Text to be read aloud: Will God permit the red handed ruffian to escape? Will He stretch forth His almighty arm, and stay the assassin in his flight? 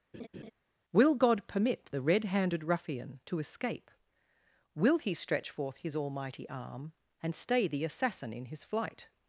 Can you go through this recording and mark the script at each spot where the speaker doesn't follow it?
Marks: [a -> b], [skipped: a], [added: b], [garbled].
Will God permit the red handed ruffian to escape? Will He stretch forth His almighty arm, and stay the assassin in his flight?